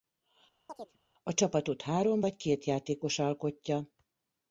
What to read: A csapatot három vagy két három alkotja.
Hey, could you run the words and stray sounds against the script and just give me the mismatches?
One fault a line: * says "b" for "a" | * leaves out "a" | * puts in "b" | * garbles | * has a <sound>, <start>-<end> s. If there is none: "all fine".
* has a chirp, 0.7-1.0 s
* says "játékos" for "három"